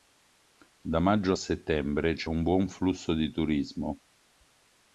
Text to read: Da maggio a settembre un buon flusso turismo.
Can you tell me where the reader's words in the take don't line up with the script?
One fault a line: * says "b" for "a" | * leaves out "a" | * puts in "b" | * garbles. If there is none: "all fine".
* puts in "c'è"
* puts in "di"